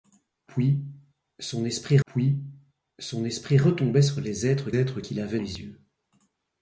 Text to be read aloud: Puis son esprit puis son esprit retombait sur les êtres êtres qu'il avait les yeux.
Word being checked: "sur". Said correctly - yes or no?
yes